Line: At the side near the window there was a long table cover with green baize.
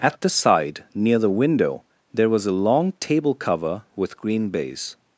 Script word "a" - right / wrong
right